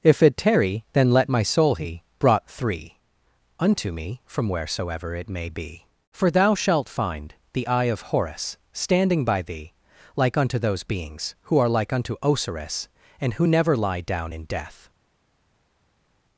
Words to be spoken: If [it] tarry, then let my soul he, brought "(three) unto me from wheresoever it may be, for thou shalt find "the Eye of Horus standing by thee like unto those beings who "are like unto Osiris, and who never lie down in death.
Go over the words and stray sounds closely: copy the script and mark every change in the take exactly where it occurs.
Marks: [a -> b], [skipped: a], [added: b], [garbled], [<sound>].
If [it] tarry, then let my soul he, brought "(three) unto me from wheresoever it may be, for thou shalt find "the Eye of Horus standing by thee like unto those beings who "are like unto Osiris, and who never lie down in death.